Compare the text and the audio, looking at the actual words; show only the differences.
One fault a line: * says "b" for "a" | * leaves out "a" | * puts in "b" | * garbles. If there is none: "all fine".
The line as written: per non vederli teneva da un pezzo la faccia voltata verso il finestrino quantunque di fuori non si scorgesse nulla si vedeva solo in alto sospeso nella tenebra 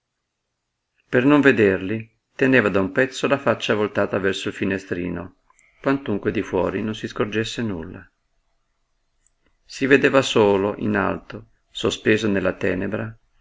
all fine